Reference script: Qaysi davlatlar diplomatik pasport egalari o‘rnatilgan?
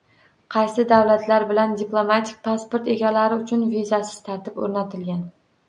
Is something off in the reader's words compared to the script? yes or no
yes